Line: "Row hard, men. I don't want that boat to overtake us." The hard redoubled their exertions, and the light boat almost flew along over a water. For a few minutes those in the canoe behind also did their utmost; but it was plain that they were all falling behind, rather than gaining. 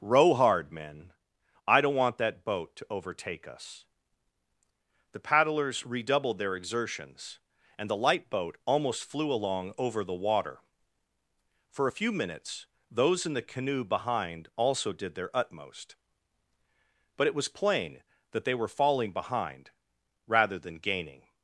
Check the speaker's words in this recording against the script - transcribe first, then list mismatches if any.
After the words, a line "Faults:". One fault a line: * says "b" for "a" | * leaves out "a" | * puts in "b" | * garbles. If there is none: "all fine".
"Row hard, men. I don't want that boat to overtake us." The paddlers redoubled their exertions, and the light boat almost flew along over the water. For a few minutes those in the canoe behind also did their utmost; but it was plain that they were falling behind, rather than gaining.
Faults:
* says "paddlers" for "hard"
* says "the" for "a"
* leaves out "all"